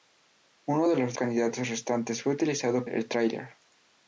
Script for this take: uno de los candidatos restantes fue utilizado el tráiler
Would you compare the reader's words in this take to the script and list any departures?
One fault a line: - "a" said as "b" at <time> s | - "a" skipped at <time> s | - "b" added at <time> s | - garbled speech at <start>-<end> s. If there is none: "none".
none